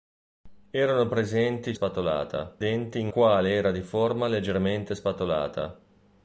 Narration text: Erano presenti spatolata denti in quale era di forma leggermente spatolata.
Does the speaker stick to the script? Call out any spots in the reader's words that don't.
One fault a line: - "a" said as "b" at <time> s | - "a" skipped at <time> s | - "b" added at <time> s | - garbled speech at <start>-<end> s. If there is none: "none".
none